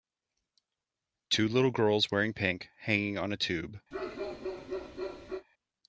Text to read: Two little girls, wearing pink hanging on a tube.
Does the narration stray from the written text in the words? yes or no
no